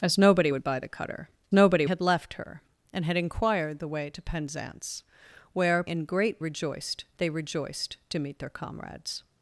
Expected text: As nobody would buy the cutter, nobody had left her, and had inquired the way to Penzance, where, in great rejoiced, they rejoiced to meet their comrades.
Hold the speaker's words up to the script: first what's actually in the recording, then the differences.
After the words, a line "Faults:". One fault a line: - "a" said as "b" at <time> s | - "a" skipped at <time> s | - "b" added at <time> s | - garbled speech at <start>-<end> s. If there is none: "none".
As nobody would buy the cutter, nobody had left her, and had inquired the way to Penzance, where, in great rejoiced, they rejoiced to meet their comrades.
Faults:
none